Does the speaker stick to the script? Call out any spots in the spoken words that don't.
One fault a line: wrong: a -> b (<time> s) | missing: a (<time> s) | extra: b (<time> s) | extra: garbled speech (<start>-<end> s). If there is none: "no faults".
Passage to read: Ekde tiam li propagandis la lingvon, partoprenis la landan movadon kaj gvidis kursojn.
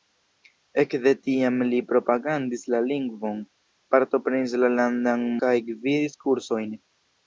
missing: movadon (5.3 s)